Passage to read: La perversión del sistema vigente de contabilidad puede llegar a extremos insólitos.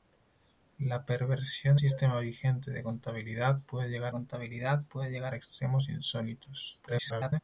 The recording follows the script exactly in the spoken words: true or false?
false